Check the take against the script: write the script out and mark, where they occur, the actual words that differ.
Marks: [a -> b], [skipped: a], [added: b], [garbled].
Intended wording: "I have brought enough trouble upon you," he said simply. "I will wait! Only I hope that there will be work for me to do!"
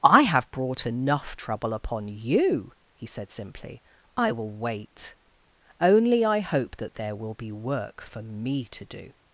"I have brought enough trouble upon you," he said simply. "I will wait! Only I hope that there will be work for me to do!"